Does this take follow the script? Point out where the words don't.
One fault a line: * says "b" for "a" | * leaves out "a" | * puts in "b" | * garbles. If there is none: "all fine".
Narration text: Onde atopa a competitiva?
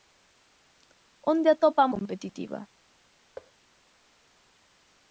all fine